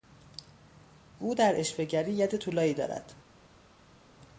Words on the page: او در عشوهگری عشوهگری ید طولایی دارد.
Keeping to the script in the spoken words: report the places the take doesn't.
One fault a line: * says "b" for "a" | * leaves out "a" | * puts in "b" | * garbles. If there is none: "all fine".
* leaves out "عشوهگری"